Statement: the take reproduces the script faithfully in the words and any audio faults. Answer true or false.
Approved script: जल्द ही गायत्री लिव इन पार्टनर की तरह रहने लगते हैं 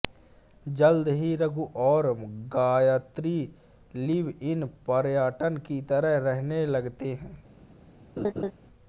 false